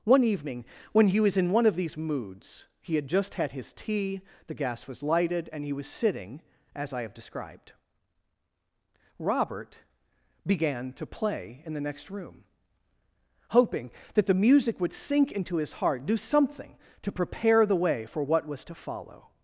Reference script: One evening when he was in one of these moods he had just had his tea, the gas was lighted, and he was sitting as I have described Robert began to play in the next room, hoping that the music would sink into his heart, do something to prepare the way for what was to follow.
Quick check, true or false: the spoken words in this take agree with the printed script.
true